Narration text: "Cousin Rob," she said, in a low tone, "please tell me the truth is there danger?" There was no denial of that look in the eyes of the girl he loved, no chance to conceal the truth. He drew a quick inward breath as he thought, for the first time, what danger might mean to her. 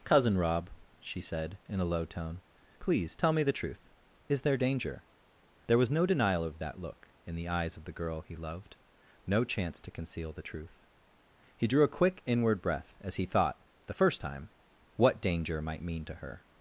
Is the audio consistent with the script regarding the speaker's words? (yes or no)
no